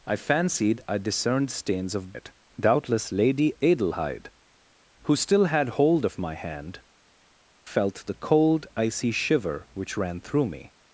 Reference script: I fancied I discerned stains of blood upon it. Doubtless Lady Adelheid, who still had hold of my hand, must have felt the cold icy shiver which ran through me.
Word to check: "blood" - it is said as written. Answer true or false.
false